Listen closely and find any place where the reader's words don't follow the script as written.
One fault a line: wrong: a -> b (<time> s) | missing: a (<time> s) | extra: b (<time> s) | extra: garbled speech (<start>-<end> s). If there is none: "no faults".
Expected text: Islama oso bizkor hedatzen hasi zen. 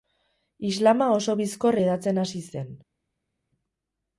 no faults